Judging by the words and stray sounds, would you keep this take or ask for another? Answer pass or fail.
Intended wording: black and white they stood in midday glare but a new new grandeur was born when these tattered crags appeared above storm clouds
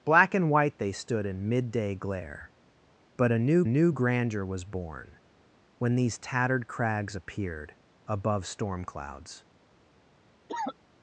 fail